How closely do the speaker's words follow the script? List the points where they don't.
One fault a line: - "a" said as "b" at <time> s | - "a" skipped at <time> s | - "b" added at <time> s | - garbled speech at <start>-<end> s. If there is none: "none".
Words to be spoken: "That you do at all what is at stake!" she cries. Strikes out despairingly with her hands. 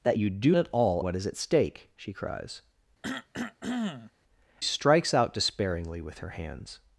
none